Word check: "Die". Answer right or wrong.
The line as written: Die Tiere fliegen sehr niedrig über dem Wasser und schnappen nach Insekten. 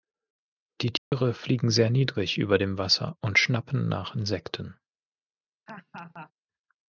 right